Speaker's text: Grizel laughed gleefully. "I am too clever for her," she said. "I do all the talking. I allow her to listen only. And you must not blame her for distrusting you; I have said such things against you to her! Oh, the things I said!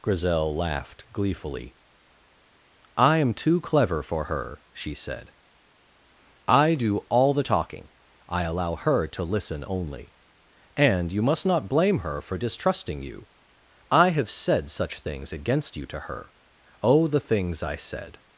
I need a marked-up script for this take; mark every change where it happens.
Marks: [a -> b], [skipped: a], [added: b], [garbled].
Grizel laughed gleefully. "I am too clever for her," she said. "I do all the talking. I allow her to listen only. And you must not blame her for distrusting you; I have said such things against you to her! Oh, the things I said!